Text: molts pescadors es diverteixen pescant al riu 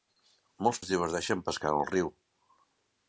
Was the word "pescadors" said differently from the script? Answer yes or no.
yes